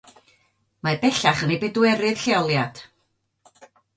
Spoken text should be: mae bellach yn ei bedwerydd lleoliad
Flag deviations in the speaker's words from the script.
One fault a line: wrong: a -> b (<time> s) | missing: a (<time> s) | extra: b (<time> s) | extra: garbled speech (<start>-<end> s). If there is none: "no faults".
no faults